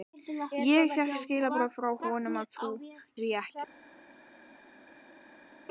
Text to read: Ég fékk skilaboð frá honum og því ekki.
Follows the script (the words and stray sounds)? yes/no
yes